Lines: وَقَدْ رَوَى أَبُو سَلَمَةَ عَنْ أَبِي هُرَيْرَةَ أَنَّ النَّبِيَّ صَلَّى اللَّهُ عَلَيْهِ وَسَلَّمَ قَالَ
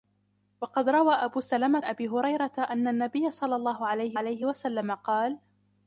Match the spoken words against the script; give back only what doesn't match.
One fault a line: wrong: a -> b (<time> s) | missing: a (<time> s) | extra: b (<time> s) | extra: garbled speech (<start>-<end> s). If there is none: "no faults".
missing: عَنْ (1.8 s)
extra: عَلَيْهِ (4.1 s)